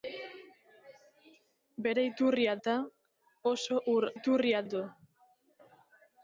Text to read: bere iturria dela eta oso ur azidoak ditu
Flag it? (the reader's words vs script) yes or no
yes